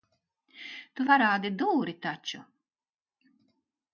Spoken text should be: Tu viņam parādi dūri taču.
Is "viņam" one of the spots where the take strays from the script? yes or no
yes